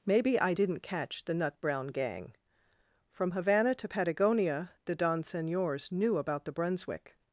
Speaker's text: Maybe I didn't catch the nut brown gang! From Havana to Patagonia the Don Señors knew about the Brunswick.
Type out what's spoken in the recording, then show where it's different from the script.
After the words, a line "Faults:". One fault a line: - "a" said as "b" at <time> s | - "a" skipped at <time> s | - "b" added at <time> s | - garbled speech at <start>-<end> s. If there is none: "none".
Maybe I didn't catch the nut brown gang! From Havana to Patagonia the Don Señors knew about the Brunswick.
Faults:
none